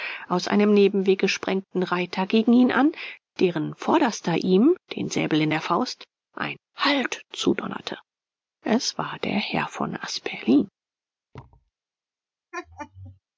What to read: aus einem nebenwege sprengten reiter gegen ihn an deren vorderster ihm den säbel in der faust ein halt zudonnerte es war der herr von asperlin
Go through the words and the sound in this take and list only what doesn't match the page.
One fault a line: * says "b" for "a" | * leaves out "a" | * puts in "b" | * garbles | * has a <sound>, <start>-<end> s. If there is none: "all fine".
* has a thud, 11.3-11.7 s
* has a laugh, 12.5-13.2 s